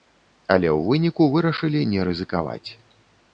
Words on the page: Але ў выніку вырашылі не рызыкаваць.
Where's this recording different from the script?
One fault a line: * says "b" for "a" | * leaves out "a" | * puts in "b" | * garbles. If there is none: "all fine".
all fine